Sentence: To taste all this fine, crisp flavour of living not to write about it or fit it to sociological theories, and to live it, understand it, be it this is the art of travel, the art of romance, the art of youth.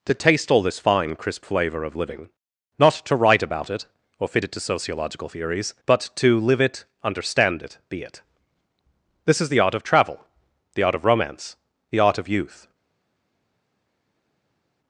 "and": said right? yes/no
no